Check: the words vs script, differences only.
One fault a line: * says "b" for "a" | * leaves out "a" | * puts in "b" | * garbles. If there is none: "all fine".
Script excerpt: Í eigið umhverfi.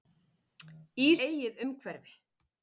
all fine